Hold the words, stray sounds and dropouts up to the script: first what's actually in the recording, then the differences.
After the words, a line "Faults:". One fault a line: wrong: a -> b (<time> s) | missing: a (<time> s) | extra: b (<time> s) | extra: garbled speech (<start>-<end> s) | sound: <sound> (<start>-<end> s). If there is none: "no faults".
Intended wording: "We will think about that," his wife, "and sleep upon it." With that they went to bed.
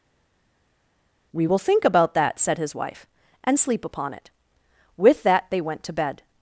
"We will think about that," said his wife, "and sleep upon it." With that they went to bed.
Faults:
extra: said (2.4 s)